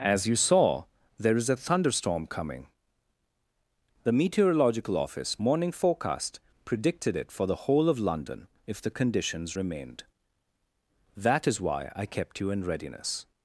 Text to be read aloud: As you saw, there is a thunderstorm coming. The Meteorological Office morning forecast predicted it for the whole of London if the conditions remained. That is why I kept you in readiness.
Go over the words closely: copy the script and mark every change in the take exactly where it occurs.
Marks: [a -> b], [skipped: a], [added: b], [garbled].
As you saw, there is a thunderstorm coming. The Meteorological Office morning forecast predicted it for the whole of London if the conditions remained. That is why I kept you in readiness.